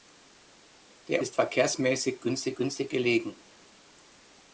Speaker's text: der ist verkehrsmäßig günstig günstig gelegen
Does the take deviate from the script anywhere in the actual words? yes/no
no